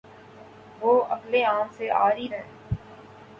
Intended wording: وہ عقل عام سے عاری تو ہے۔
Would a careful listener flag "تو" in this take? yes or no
yes